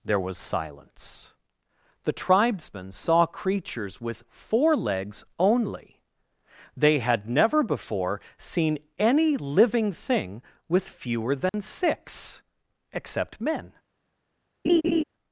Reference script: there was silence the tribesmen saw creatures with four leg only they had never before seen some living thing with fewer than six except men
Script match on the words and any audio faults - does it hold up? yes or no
no